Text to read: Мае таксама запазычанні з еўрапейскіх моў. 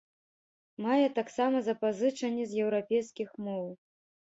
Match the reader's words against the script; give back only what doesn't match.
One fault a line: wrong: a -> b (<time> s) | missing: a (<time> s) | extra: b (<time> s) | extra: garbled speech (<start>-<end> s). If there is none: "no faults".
no faults